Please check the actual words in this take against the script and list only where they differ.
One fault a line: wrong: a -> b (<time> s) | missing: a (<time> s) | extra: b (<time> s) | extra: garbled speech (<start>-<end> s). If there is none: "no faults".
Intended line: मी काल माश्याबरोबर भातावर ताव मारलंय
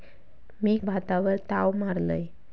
missing: काल माश्याबरोबर (0.8 s)